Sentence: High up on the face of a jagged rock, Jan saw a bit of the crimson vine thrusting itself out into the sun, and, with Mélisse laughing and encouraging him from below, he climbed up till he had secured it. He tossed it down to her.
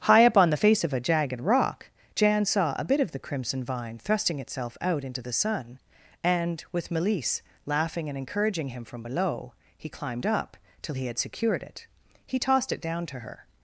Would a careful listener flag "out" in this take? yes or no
no